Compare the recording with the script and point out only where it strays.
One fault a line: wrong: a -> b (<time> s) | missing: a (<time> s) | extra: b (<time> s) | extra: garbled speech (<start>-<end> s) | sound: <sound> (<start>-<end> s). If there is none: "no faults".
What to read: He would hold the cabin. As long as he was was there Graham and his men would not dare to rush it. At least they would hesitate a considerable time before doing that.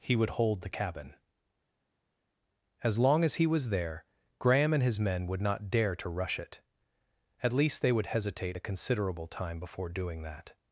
missing: was (3.7 s)